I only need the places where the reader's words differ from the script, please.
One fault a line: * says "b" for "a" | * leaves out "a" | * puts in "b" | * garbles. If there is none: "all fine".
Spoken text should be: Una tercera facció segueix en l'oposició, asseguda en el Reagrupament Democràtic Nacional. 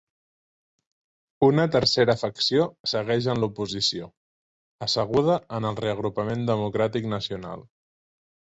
all fine